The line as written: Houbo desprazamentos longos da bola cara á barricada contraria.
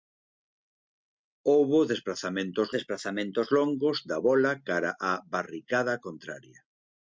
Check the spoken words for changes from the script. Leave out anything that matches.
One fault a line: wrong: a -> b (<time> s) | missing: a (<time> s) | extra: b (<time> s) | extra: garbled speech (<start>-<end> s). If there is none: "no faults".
extra: desprazamentos (2.8 s)